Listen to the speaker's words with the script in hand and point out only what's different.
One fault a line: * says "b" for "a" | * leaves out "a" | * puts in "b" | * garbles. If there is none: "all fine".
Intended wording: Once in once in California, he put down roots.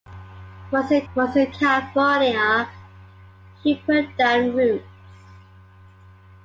all fine